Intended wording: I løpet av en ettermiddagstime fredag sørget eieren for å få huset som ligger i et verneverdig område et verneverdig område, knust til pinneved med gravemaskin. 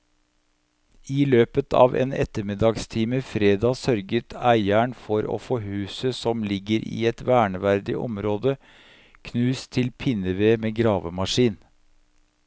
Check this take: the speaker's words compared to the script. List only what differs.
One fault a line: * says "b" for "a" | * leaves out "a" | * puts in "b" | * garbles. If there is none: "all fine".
* leaves out "et verneverdig område"